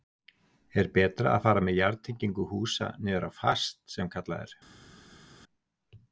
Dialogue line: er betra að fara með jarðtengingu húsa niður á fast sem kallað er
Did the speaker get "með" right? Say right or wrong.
right